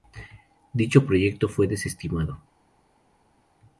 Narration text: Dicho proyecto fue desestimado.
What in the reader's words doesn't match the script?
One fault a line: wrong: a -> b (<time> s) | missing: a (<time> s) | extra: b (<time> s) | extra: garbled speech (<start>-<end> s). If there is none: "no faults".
no faults